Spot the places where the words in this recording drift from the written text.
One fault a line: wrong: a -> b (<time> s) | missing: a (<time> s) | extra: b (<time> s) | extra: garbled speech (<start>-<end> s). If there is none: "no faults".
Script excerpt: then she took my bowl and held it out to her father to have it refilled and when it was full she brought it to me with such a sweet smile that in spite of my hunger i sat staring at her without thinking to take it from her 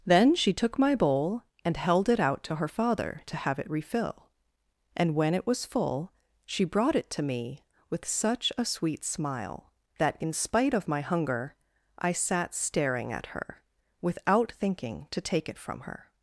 wrong: refilled -> refill (3.7 s)